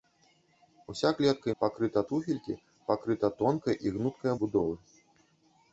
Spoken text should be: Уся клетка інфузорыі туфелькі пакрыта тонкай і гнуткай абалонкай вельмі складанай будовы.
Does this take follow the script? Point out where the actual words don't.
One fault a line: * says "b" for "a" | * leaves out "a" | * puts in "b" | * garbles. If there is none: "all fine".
* says "пакрыта" for "інфузорыі"
* leaves out "абалонкай вельмі складанай"